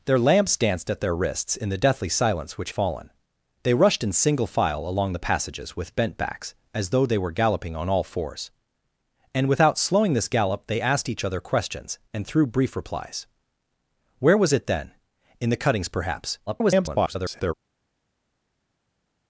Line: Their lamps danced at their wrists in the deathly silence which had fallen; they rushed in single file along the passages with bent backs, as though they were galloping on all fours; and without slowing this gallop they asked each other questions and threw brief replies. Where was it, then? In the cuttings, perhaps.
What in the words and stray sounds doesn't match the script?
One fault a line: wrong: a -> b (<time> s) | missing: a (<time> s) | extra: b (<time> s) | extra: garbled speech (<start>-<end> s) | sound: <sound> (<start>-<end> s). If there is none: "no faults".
missing: had (2.7 s)
extra: garbled speech (16.5-17.5 s)